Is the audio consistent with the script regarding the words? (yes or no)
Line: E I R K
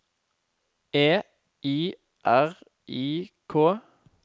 no